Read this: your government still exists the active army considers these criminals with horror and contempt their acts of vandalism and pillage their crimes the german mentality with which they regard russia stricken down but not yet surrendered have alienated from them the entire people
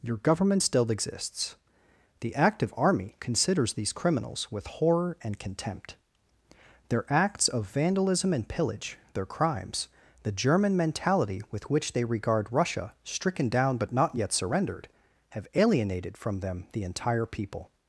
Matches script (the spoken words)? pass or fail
pass